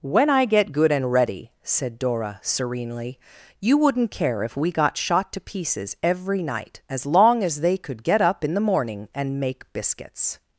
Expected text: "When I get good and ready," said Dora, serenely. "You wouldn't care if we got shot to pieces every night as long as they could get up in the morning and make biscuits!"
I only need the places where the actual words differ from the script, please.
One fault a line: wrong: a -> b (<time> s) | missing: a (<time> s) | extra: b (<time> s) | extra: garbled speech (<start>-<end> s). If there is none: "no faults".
no faults